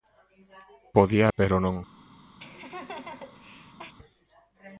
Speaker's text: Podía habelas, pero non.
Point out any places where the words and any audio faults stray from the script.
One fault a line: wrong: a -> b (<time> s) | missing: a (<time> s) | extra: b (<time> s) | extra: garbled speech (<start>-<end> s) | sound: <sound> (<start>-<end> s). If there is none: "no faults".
missing: habelas (1.2 s)
sound: laugh (2.4-3.9 s)